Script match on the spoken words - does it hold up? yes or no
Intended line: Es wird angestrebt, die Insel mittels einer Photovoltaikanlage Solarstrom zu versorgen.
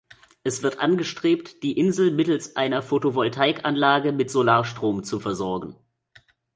no